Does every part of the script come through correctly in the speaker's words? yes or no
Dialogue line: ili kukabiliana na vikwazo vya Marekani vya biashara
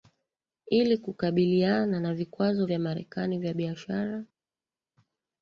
yes